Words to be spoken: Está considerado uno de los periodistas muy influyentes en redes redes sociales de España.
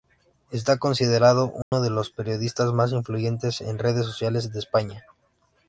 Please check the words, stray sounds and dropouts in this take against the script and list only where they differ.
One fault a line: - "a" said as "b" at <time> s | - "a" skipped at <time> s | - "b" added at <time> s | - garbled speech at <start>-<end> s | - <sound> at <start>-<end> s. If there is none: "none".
- dropout at 1.6-1.7 s
- "muy" said as "más" at 2.7 s
- "redes" skipped at 4.0 s